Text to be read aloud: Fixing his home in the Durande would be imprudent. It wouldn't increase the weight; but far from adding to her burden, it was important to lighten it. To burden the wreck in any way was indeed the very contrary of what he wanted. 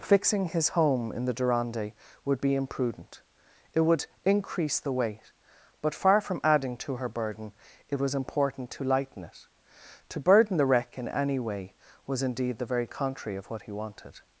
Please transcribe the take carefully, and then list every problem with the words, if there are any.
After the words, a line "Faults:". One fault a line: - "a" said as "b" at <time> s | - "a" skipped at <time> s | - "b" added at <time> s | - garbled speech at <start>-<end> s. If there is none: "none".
Fixing his home in the Durande would be imprudent. It would increase the weight; but far from adding to her burden, it was important to lighten it. To burden the wreck in any way was indeed the very contrary of what he wanted.
Faults:
- "wouldn't" said as "would" at 3.8 s